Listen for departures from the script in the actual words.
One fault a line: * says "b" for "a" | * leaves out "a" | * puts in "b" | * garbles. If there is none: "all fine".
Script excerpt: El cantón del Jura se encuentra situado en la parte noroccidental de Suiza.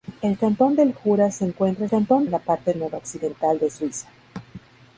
* says "cantón" for "situado"